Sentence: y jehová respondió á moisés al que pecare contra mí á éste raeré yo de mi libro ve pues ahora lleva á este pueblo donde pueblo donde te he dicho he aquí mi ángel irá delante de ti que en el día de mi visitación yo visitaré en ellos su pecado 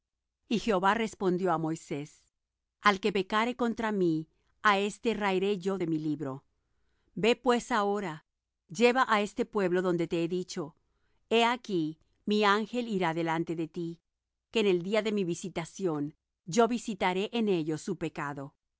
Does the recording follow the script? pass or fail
fail